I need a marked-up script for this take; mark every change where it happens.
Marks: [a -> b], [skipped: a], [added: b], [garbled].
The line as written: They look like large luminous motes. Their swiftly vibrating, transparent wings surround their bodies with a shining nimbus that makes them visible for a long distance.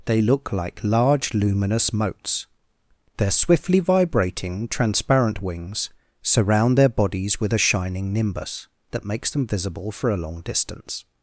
They look like large luminous motes. Their swiftly vibrating, transparent wings surround their bodies with a shining nimbus that makes them visible for a long distance.